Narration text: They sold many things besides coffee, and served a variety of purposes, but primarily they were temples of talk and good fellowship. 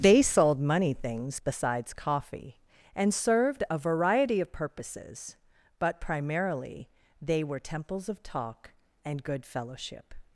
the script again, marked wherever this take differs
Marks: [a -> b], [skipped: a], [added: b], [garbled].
They sold [many -> money] things besides coffee, and served a variety of purposes, but primarily they were temples of talk and good fellowship.